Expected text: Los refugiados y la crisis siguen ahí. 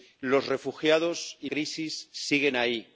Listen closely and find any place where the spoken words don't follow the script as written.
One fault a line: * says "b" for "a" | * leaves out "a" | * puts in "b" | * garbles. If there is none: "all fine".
* leaves out "la"